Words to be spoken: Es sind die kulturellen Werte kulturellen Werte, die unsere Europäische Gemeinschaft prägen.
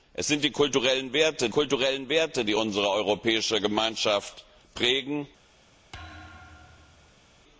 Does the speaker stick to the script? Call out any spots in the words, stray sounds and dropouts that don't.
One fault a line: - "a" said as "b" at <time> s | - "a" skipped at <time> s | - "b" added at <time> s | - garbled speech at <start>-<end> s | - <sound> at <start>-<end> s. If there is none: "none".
- thud at 5.9-7.4 s